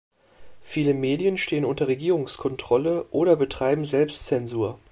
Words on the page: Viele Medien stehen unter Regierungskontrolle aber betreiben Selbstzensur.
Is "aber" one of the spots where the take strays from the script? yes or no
yes